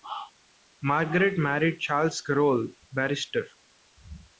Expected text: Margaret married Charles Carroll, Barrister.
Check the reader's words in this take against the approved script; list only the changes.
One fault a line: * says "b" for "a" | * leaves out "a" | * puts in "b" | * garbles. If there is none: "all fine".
all fine